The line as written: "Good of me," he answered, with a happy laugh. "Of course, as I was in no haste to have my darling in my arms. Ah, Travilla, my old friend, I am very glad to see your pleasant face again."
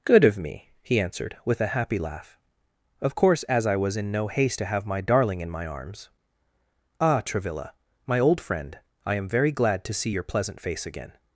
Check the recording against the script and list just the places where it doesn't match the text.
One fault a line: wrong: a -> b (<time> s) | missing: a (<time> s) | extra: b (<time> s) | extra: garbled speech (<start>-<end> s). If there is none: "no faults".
no faults